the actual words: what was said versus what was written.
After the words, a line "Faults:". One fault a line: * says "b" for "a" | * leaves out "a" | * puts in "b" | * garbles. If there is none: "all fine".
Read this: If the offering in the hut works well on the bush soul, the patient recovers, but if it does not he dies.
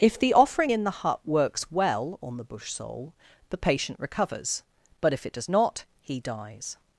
If the offering in the hut works well on the bush soul, the patient recovers, but if it does not he dies.
Faults:
all fine